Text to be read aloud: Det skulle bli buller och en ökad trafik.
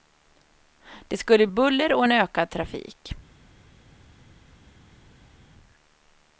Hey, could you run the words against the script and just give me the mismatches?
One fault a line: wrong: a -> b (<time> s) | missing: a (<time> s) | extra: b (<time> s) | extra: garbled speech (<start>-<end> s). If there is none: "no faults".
missing: bli (1.5 s)